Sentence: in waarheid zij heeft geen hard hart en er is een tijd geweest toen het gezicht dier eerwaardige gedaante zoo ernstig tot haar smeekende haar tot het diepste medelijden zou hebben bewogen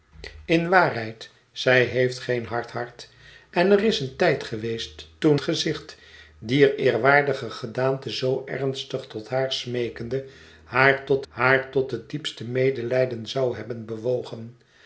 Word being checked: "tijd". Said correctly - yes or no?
yes